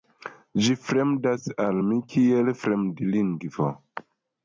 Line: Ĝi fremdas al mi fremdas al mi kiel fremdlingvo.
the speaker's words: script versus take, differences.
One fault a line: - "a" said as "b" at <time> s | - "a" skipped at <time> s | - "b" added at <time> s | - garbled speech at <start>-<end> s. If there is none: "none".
- "fremdas al mi" skipped at 2.0 s